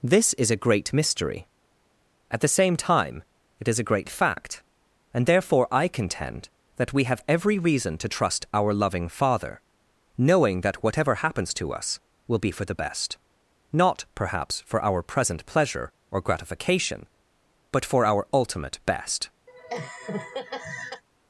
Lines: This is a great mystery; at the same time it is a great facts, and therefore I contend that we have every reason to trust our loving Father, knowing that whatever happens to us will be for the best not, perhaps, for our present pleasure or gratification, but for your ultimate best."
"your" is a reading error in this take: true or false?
true